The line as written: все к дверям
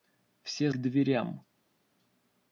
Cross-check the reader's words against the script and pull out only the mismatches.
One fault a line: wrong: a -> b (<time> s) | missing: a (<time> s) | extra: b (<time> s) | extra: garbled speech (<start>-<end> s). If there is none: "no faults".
no faults